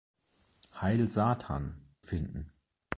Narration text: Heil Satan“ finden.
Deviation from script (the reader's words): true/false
false